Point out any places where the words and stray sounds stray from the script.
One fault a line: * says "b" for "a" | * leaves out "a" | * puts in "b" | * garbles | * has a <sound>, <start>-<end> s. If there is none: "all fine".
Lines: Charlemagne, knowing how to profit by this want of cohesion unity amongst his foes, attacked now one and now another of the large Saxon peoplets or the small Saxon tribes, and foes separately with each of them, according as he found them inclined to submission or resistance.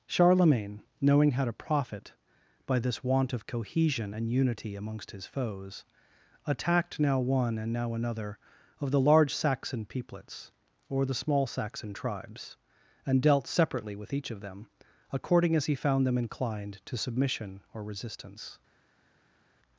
* puts in "and"
* says "dealt" for "foes"